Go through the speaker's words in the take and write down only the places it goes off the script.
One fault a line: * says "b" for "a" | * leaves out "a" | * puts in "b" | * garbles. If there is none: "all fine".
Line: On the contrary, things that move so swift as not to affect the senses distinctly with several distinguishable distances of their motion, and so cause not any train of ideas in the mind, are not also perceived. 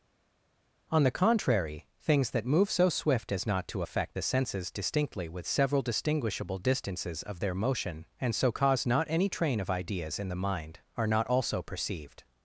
all fine